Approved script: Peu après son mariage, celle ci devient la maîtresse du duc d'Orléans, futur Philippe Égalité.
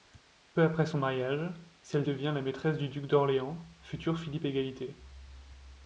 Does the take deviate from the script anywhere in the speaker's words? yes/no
yes